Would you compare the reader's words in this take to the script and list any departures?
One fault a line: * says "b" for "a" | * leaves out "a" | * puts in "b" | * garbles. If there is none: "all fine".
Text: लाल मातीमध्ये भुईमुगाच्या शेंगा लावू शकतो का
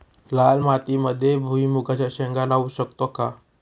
all fine